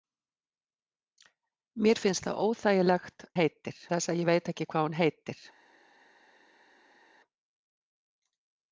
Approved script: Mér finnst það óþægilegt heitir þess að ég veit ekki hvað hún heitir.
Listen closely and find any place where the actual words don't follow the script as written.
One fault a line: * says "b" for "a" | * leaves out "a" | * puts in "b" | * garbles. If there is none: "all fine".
all fine